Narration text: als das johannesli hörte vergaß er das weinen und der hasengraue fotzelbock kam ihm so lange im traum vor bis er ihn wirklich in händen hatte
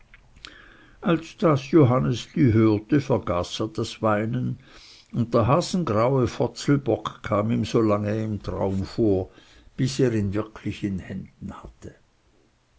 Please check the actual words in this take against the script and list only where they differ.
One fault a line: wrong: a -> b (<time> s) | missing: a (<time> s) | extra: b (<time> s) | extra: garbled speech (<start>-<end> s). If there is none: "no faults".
no faults